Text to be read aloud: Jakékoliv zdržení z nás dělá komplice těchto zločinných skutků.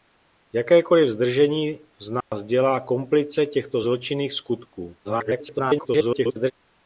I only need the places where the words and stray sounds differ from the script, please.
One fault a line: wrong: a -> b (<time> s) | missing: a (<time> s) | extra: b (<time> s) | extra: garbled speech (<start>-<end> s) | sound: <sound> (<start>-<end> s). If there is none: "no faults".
sound: dropout (2.2-2.3 s)
extra: garbled speech (5.0-6.5 s)